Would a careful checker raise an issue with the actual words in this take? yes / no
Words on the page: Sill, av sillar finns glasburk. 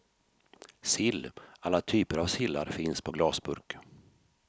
yes